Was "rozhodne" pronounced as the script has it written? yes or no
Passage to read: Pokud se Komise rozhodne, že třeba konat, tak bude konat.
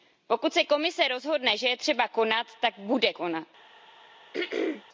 yes